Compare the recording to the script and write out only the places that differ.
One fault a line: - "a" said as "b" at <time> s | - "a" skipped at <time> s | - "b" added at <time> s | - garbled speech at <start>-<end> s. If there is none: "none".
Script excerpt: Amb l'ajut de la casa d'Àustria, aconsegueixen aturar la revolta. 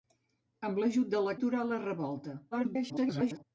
- "casa d'Àustria aconsegueixen" skipped at 1.4 s
- garbled speech at 2.5-3.4 s